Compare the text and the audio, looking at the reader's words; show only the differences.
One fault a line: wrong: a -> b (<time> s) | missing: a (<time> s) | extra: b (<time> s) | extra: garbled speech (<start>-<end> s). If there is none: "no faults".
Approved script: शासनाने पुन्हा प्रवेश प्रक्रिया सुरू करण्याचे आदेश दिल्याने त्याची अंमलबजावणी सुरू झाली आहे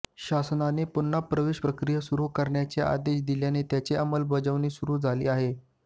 no faults